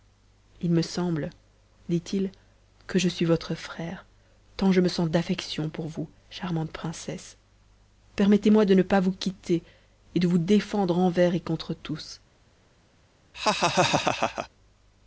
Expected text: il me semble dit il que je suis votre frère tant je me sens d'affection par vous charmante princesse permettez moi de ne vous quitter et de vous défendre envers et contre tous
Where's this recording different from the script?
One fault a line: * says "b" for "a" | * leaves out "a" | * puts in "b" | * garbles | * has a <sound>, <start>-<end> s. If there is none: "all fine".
* says "pour" for "par"
* puts in "pas"
* has a laugh, 13.3-14.5 s